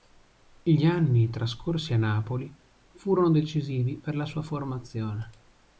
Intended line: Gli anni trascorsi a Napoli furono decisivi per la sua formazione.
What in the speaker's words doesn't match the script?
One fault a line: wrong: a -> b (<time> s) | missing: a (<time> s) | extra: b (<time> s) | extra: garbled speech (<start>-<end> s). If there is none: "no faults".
no faults